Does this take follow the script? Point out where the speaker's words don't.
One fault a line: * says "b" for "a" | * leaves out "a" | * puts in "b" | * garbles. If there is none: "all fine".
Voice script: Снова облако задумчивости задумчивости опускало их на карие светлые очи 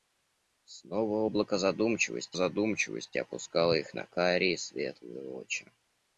all fine